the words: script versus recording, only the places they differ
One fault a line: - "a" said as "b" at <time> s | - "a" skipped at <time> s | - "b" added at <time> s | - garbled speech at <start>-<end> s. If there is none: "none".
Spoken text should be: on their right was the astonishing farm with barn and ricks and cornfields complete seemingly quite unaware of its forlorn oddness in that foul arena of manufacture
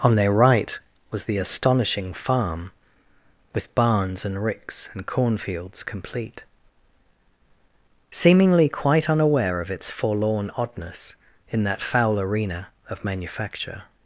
- "barn" said as "barns" at 3.8 s